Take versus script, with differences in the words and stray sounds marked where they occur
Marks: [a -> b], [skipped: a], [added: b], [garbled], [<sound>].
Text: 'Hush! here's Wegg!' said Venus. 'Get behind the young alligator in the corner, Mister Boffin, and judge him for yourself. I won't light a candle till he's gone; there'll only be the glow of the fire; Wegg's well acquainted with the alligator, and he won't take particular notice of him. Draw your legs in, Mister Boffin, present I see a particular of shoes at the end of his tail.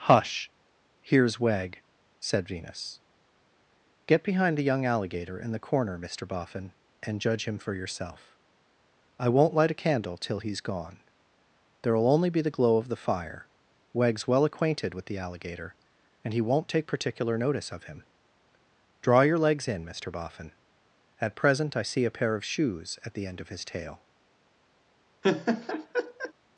'Hush! here's Wegg!' said Venus. 'Get behind the young alligator in the corner, Mister Boffin, and judge him for yourself. I won't light a candle till he's gone; there'll only be the glow of the fire; Wegg's well acquainted with the alligator, and he won't take particular notice of him. Draw your legs in, Mister Boffin, [added: at] present I see a [particular -> pair] of shoes at the end of his tail. [laugh]